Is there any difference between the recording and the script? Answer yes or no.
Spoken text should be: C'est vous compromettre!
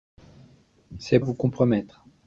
no